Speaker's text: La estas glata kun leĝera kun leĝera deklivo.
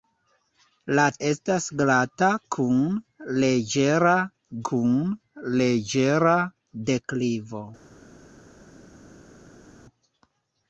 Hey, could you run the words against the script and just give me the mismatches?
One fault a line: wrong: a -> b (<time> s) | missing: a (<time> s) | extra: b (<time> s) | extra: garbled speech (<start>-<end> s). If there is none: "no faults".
no faults